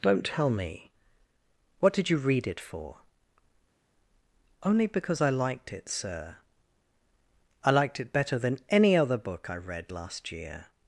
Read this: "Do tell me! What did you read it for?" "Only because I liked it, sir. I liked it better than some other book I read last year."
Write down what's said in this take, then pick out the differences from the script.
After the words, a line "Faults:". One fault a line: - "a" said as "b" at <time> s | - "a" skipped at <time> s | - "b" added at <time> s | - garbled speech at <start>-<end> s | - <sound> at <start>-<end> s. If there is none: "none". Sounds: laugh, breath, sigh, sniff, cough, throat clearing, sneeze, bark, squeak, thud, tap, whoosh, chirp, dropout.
"Don't tell me! What did you read it for?" "Only because I liked it, sir. I liked it better than any other book I read last year."
Faults:
- "Do" said as "Don't" at 0.0 s
- "some" said as "any" at 8.7 s